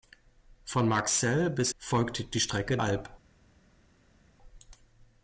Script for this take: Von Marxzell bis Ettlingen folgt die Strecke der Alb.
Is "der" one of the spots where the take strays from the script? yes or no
yes